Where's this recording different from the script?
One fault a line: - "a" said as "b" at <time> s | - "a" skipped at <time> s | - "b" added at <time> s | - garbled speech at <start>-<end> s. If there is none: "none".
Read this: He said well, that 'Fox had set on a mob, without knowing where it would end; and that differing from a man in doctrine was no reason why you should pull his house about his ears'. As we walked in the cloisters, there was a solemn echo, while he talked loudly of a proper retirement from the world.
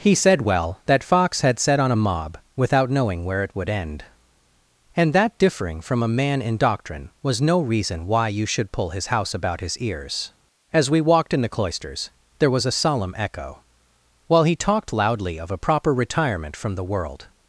none